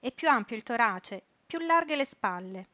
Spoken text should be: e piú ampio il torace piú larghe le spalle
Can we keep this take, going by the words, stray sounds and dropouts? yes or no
yes